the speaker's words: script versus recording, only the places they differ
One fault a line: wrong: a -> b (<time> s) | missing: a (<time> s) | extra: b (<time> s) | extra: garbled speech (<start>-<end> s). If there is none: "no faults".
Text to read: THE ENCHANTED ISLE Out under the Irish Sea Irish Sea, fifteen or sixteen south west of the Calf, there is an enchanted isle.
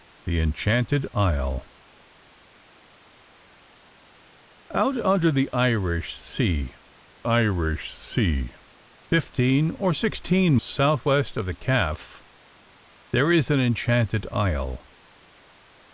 no faults